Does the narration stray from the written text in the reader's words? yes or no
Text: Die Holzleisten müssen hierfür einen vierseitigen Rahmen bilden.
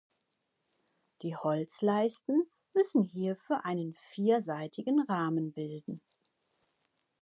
no